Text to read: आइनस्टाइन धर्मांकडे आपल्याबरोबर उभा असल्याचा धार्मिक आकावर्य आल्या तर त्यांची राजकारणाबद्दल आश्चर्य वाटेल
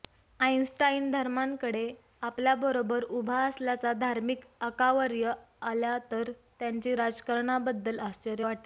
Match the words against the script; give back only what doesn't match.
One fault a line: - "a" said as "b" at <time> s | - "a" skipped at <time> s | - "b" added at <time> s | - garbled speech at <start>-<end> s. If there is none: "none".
none